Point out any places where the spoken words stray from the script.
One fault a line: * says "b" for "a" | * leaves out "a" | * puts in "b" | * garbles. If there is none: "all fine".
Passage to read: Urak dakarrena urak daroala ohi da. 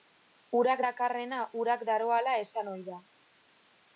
* puts in "esan"